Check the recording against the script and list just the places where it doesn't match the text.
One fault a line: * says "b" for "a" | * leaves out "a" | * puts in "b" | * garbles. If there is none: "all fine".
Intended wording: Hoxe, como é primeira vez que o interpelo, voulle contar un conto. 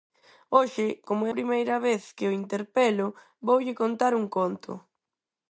all fine